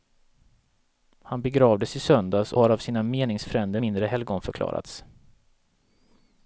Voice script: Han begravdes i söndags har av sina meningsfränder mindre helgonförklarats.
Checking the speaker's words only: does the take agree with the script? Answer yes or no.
yes